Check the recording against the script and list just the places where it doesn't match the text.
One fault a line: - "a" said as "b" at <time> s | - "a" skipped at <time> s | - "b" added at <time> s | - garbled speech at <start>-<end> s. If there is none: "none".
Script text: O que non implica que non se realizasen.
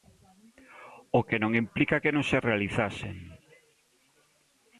none